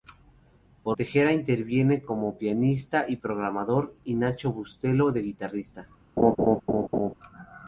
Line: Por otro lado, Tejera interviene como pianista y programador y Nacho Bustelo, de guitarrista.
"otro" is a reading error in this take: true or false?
true